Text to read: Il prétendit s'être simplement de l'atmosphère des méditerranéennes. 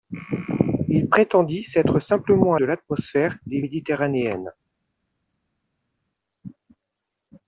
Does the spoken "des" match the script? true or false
true